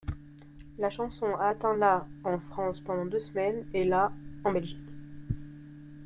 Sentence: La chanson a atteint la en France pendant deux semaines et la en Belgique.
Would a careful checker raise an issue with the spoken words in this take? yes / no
no